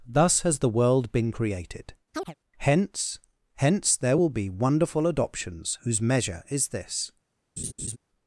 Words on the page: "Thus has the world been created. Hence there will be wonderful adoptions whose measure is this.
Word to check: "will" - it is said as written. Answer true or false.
true